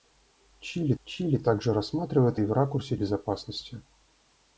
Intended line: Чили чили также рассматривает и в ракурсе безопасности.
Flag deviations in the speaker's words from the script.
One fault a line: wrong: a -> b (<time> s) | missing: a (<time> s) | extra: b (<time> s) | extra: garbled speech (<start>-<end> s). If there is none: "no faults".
no faults